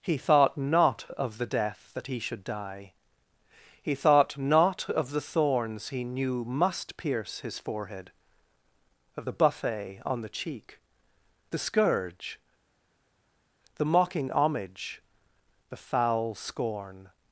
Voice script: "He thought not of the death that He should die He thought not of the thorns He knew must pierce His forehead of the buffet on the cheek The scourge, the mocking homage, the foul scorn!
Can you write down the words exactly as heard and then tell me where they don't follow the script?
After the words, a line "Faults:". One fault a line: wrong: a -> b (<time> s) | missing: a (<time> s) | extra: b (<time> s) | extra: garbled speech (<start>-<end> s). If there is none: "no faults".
"He thought not of the death that He should die He thought not of the thorns He knew must pierce His forehead of the buffet on the cheek The scourge, the mocking homage, the foul scorn!
Faults:
no faults